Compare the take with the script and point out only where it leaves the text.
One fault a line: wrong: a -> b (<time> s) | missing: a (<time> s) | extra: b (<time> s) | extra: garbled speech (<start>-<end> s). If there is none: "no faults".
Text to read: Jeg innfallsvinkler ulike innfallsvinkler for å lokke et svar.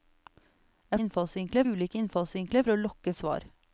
no faults